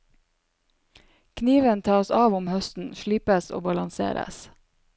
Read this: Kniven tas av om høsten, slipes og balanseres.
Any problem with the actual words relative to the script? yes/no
no